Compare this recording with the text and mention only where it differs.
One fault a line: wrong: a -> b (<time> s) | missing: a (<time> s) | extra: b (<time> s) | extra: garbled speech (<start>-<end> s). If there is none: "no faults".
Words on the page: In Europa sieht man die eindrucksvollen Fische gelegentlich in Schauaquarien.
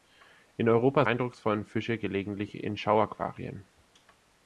missing: sieht man die (1.1 s)